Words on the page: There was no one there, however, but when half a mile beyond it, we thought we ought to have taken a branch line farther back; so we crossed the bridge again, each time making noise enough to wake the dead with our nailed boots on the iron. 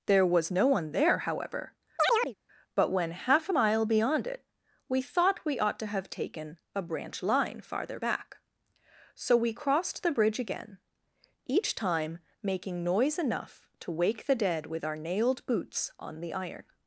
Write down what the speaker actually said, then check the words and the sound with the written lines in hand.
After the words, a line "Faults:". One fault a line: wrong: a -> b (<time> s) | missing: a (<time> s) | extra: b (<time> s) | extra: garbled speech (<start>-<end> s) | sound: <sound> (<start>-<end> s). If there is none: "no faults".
There was no one there, however, but when half a mile beyond it, we thought we ought to have taken a branch line farther back; so we crossed the bridge again, each time making noise enough to wake the dead with our nailed boots on the iron.
Faults:
sound: chirp (2.0-2.3 s)